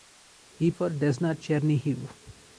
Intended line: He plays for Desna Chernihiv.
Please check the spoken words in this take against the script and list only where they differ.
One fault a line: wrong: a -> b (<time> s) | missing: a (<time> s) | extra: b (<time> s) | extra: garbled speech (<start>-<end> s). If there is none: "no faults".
missing: plays (0.7 s)